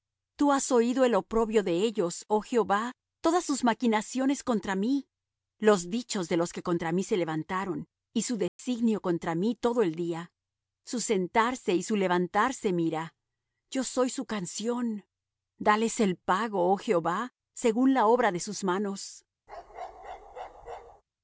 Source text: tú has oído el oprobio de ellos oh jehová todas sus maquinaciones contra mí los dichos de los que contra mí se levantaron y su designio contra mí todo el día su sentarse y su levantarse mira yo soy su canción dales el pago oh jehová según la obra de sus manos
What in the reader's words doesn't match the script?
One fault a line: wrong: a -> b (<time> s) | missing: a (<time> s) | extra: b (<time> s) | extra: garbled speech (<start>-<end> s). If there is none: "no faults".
no faults